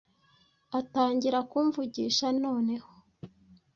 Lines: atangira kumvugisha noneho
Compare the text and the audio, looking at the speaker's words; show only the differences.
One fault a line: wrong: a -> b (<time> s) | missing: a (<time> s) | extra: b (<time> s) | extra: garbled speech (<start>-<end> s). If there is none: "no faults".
no faults